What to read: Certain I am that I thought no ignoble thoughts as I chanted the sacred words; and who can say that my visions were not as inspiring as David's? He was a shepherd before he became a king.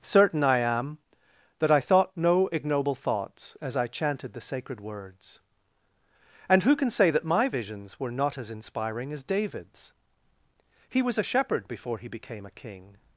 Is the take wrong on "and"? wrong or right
right